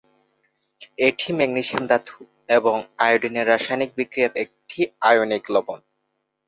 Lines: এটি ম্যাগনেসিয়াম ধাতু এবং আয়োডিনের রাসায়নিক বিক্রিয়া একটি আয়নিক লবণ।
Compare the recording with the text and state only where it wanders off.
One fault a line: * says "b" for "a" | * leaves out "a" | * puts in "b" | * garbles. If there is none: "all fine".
all fine